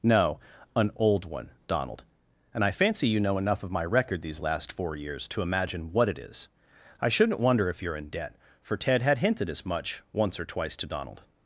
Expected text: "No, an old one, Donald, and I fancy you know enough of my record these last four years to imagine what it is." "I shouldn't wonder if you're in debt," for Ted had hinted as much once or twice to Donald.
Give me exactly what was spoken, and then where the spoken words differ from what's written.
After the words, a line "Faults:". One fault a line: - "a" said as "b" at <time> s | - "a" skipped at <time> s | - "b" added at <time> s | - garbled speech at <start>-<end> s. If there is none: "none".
"No, an old one, Donald, and I fancy you know enough of my record these last four years to imagine what it is." "I shouldn't wonder if you're in debt," for Ted had hinted as much once or twice to Donald.
Faults:
none